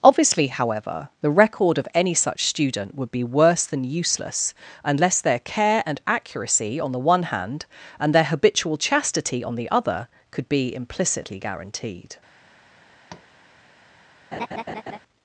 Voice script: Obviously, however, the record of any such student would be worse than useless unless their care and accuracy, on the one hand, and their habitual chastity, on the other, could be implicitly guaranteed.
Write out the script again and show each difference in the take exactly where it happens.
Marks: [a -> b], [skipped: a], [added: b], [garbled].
Obviously, however, the record of any such student would be worse than useless unless their care and accuracy, on the one hand, and their habitual chastity, on the other, could be implicitly guaranteed.